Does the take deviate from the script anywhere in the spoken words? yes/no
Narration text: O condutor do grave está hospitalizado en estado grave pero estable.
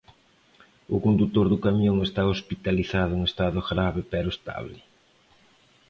yes